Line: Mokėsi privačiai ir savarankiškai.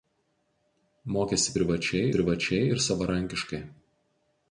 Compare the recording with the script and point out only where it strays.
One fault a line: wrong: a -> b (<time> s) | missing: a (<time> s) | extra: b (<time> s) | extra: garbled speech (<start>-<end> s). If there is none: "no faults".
extra: privačiai (2.1 s)